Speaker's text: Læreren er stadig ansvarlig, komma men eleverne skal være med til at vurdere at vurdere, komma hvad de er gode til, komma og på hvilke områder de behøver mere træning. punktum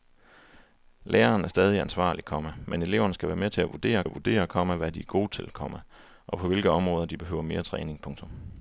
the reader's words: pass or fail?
pass